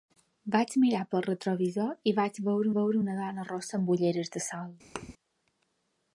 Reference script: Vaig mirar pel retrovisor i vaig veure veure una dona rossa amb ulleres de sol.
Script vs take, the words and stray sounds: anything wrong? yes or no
yes